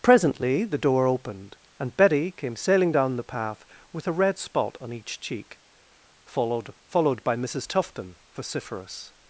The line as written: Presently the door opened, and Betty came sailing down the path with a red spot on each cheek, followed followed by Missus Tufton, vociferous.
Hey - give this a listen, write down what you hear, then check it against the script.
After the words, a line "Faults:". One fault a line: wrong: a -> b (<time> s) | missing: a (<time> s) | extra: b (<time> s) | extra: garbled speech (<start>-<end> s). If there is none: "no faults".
Presently the door opened, and Betty came sailing down the path with a red spot on each cheek, followed followed by Missus Tufton, vociferous.
Faults:
no faults